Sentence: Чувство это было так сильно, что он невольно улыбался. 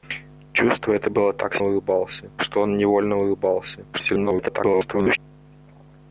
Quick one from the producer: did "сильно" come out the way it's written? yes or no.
no